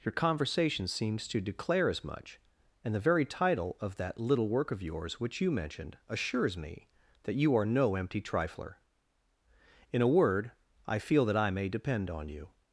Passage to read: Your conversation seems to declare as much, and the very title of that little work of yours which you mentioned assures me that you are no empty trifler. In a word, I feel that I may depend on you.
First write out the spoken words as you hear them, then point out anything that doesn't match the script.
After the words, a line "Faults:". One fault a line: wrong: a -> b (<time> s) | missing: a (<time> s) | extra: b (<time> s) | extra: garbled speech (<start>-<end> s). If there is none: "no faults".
Your conversation seems to declare as much, and the very title of that little work of yours which you mentioned assures me that you are no empty trifler. In a word, I feel that I may depend on you.
Faults:
no faults